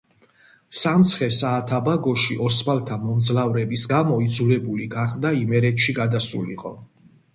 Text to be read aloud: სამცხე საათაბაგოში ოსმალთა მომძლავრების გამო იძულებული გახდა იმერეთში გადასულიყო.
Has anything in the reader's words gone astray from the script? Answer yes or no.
no